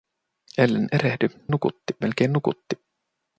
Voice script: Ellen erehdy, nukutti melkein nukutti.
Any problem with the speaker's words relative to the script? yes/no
no